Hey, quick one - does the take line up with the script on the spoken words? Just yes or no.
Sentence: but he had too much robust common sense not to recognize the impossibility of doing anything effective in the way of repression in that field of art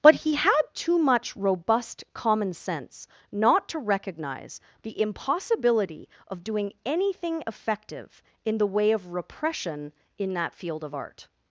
yes